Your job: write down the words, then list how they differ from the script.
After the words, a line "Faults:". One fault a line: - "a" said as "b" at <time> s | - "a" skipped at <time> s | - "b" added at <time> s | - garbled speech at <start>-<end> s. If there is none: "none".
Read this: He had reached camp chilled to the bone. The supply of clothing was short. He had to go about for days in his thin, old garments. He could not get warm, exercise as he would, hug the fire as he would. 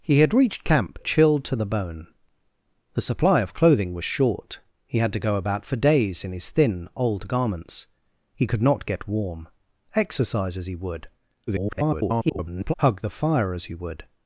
He had reached camp chilled to the bone. The supply of clothing was short. He had to go about for days in his thin, old garments. He could not get warm, exercise as he would, [garbled] hug the fire as he would.
Faults:
- garbled speech at 11.5-12.7 s